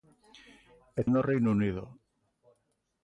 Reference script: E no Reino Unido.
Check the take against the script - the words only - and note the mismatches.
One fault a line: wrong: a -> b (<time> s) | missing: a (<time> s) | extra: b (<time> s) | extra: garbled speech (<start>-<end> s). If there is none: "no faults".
no faults